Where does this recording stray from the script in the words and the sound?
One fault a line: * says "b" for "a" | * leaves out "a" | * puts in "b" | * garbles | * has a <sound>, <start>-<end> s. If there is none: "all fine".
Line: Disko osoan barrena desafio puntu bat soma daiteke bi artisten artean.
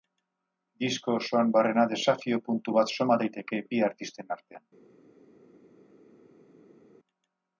all fine